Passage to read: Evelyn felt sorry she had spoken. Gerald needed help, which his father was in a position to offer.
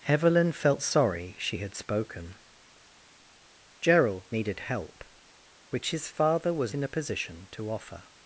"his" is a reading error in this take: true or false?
false